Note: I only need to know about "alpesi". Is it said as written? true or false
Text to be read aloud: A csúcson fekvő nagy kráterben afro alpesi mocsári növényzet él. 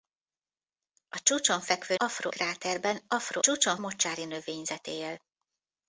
false